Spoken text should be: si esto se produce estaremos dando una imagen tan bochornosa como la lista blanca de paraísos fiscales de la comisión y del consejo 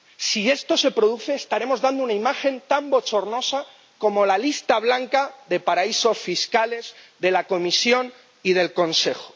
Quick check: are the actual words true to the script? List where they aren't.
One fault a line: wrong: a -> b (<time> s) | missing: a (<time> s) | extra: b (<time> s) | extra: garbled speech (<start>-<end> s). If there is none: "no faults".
no faults